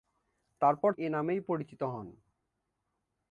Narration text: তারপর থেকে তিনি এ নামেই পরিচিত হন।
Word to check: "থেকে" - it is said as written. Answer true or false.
false